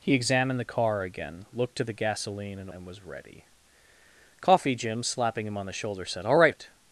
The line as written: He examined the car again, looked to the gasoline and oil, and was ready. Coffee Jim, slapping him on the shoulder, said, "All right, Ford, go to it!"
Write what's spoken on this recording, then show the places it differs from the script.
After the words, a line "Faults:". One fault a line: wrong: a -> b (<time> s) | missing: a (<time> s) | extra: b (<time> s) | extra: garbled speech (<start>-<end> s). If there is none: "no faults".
He examined the car again, looked to the gasoline and and was ready. Coffee Jim, slapping him on the shoulder, said, "All right, It!"
Faults:
missing: oil (2.7 s)
missing: Ford go to (6.6 s)